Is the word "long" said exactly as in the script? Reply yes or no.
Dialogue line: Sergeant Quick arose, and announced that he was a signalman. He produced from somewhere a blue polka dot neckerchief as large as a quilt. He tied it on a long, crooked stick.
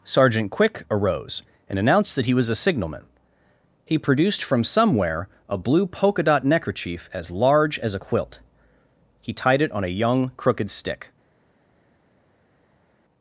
no